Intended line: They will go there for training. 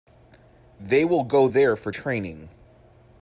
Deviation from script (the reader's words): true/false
false